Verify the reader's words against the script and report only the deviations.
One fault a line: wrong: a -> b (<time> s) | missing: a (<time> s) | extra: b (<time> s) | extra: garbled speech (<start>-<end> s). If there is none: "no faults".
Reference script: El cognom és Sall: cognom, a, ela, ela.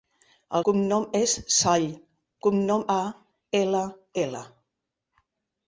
no faults